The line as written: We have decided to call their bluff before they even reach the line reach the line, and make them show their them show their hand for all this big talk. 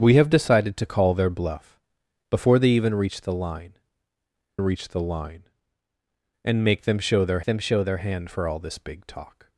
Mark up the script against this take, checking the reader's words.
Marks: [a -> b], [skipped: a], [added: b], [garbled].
We have decided to call their bluff before they even reach the line reach the line, and make them show their them show their hand for all this big talk.